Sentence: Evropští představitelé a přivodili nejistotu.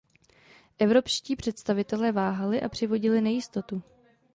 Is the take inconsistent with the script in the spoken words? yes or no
yes